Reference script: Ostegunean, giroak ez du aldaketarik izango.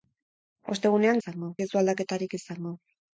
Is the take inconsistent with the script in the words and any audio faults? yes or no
yes